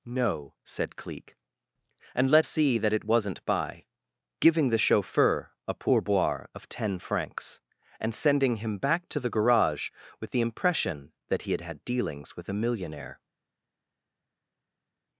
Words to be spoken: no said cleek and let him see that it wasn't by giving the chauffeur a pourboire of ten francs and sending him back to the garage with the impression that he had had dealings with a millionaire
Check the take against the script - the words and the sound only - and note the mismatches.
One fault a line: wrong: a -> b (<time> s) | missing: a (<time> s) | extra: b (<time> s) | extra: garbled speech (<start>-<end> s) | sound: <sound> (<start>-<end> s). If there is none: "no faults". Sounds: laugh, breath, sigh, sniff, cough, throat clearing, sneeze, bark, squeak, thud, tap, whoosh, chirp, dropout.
missing: him (2.5 s)